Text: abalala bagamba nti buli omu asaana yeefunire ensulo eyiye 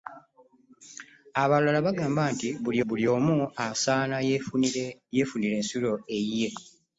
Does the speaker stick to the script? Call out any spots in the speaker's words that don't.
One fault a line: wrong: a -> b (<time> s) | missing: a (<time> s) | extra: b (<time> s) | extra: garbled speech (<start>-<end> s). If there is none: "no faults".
extra: buli (2.9 s)